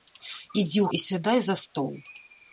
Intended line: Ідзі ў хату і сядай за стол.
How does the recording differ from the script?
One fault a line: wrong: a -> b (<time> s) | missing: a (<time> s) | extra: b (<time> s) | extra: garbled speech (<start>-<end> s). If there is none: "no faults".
missing: хату (0.9 s)